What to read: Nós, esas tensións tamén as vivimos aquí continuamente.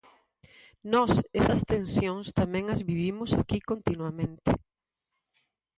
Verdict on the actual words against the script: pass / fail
pass